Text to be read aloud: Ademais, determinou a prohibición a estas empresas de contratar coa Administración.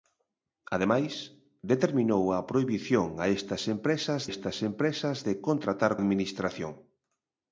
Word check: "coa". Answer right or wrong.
wrong